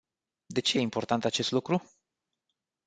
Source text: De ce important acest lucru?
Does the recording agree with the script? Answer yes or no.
yes